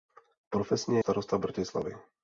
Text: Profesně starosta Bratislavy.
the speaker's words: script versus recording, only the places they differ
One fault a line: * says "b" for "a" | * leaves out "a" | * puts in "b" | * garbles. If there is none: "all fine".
all fine